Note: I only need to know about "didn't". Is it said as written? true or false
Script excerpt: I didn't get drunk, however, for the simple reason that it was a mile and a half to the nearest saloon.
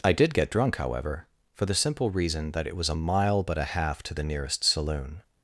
false